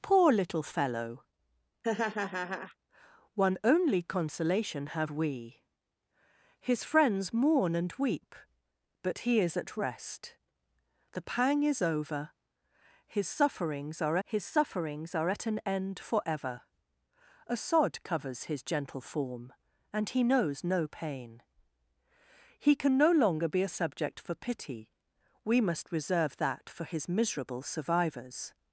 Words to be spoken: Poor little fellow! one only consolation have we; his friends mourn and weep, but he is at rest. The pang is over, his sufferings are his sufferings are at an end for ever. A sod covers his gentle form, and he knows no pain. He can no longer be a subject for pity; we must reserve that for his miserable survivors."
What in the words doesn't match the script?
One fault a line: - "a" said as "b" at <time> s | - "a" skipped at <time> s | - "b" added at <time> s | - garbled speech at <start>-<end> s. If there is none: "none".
none